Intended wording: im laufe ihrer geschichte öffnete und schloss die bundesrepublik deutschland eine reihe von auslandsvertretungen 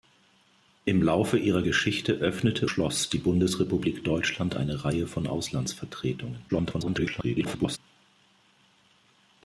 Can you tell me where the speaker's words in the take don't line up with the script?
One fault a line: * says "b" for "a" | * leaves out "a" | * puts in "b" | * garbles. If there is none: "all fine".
* leaves out "und"
* garbles